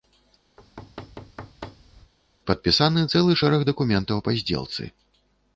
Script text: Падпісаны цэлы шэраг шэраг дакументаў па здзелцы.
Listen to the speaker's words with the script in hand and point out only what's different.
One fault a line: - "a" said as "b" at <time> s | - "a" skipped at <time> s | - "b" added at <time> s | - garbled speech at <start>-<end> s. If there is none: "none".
- "шэраг" skipped at 3.7 s